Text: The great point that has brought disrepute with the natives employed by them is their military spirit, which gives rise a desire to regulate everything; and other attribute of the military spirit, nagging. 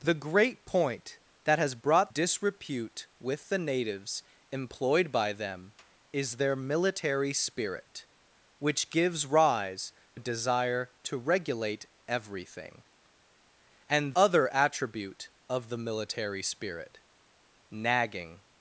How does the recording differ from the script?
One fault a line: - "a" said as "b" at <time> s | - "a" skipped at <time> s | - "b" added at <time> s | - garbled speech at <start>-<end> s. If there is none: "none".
none